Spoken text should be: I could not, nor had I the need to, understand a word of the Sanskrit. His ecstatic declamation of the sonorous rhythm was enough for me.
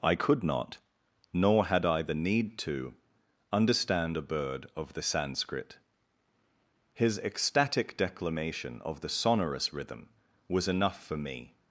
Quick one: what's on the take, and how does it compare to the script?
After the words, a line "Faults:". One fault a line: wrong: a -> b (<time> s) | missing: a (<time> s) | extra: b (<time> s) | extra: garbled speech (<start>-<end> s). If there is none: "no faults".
I could not, nor had I the need to, understand a bird of the Sanskrit. His ecstatic declamation of the sonorous rhythm was enough for me.
Faults:
wrong: word -> bird (4.2 s)